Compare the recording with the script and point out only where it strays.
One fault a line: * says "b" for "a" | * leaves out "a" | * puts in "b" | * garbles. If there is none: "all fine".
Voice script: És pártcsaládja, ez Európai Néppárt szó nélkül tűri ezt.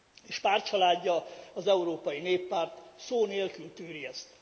* says "az" for "ez"